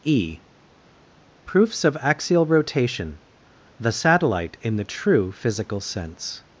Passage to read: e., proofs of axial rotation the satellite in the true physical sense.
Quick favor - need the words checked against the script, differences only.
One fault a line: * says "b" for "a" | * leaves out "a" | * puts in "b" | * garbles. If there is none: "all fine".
all fine